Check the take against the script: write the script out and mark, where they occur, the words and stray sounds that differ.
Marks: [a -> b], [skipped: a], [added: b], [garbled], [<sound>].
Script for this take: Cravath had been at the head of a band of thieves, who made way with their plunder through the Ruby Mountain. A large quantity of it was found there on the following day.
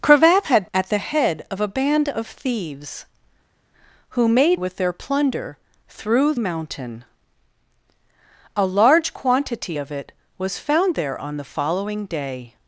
Cravath had [skipped: been] at the head of a band of thieves, who made [skipped: way] with their plunder through [skipped: the Ruby] Mountain. A large quantity of it was found there on the following day.